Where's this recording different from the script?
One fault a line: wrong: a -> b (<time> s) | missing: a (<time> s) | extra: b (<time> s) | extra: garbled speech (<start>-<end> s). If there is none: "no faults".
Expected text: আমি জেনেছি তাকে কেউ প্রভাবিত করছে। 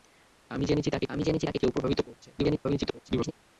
extra: আমি জেনেছি তাকে (1.1 s)
extra: garbled speech (2.4-3.3 s)